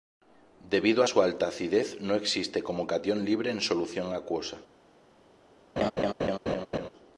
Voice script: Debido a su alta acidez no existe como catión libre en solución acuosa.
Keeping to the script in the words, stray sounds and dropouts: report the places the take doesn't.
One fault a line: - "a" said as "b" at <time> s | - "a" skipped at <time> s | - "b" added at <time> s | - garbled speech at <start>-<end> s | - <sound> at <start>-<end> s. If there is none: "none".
- laugh at 5.8-6.9 s